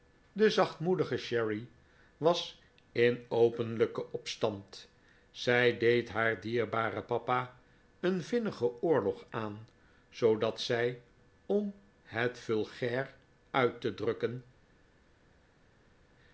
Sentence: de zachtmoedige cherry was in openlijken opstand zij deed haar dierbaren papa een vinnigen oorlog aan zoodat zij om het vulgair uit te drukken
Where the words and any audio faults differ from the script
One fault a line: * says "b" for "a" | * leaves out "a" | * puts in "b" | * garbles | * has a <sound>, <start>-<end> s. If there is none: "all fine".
all fine